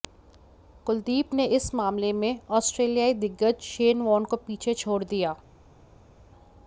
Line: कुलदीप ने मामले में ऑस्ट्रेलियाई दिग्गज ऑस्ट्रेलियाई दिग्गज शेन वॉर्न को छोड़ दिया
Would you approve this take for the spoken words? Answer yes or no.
no